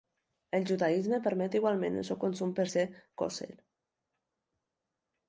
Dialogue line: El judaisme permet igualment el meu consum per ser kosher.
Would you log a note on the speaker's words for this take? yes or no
yes